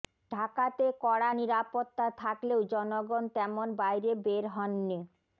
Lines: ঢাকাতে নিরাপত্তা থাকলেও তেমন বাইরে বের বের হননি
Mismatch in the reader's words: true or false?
true